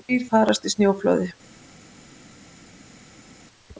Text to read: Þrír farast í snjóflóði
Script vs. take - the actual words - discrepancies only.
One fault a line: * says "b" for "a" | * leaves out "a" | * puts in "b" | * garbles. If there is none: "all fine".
all fine